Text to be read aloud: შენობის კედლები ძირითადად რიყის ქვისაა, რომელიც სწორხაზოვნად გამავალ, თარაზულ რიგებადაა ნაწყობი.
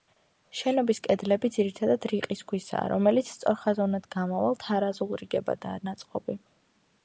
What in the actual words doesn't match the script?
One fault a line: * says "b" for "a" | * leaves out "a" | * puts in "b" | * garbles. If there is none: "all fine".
all fine